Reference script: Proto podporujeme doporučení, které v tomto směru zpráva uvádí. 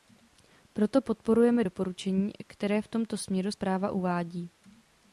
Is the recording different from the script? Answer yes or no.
no